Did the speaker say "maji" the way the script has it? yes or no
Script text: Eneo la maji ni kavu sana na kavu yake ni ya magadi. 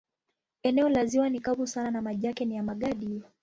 no